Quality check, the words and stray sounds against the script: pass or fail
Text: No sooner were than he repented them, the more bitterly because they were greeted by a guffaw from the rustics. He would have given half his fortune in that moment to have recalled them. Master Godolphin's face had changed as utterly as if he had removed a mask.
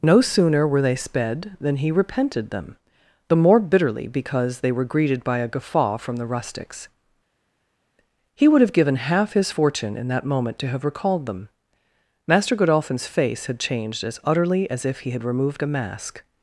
fail